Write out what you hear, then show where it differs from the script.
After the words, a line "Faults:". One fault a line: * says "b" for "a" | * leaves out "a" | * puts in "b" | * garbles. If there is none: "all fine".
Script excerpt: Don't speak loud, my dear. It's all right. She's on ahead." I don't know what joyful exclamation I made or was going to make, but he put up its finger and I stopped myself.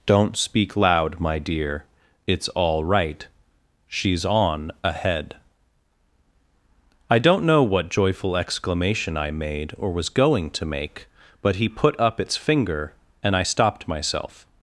Don't speak loud, my dear. It's all right. She's on ahead." I don't know what joyful exclamation I made or was going to make, but he put up its finger and I stopped myself.
Faults:
all fine